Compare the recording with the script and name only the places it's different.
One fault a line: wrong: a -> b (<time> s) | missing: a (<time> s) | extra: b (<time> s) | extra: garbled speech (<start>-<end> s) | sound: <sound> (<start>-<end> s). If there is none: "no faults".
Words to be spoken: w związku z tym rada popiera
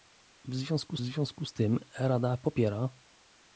extra: związku (1.0 s)